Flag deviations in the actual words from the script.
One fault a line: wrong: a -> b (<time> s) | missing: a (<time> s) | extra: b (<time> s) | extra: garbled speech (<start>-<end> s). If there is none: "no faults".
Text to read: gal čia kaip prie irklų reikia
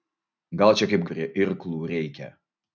no faults